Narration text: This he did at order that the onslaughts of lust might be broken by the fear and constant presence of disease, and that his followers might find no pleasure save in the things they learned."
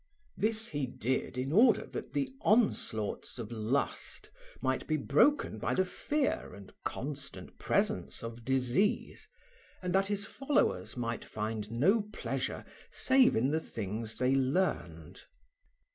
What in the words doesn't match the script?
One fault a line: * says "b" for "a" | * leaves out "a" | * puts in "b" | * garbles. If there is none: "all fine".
* says "in" for "at"